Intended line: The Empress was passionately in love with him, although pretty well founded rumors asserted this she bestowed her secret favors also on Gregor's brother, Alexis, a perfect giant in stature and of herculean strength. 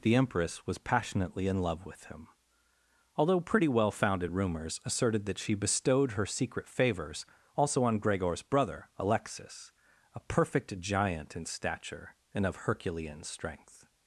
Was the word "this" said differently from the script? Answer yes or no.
yes